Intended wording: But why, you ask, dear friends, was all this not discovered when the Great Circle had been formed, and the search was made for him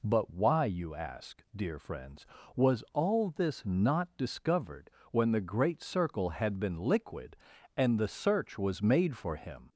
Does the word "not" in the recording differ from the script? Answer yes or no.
no